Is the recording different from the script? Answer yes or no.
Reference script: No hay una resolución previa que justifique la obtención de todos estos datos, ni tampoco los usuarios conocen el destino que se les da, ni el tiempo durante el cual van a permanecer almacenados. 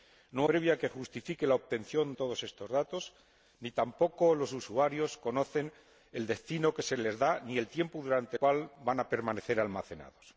yes